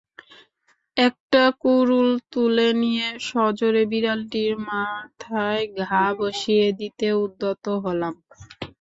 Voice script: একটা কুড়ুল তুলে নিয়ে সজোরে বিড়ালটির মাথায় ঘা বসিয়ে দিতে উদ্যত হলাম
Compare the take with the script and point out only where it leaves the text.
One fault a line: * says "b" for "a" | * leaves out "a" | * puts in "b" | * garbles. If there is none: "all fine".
all fine